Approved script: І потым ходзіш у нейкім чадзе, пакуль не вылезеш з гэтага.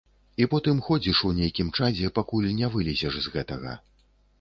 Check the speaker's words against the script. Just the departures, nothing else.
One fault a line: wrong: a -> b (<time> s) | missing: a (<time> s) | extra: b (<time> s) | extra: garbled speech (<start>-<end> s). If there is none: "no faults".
no faults